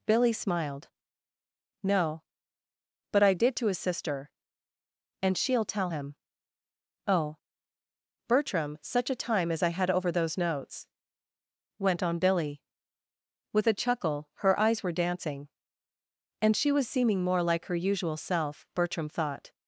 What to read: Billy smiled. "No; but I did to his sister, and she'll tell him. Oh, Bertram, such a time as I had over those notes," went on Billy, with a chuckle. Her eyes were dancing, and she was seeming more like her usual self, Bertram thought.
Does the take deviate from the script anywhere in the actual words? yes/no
no